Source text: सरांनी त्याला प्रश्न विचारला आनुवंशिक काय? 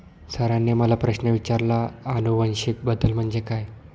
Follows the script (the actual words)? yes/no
no